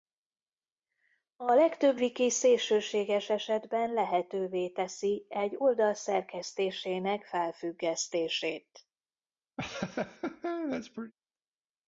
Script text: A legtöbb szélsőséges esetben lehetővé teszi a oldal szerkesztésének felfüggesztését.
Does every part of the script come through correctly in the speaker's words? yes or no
no